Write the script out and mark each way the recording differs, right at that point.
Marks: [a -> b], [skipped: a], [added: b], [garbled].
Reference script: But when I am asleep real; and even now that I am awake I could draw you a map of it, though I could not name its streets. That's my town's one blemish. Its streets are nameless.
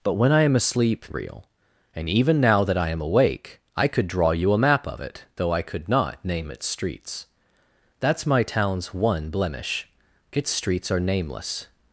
But when I am asleep real; and even now that I am awake I could draw you a map of it, though I could not name its streets. That's my town's one blemish. Its streets are nameless.